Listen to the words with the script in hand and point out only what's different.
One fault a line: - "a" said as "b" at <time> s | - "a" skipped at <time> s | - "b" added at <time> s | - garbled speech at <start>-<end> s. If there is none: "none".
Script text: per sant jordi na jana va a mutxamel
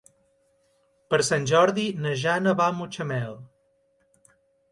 none